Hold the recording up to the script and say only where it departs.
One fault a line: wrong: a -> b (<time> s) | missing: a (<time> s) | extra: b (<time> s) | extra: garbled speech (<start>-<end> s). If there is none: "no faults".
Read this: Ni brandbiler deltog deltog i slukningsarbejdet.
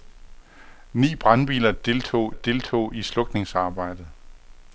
no faults